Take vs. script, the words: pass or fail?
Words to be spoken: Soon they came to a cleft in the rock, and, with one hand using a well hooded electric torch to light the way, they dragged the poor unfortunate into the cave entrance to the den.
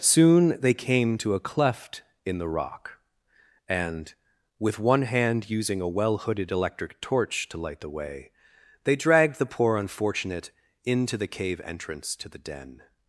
pass